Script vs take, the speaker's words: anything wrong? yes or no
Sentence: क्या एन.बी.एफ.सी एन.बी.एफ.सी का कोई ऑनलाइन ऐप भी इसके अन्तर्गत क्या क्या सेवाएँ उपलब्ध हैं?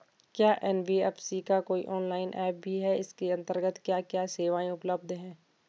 yes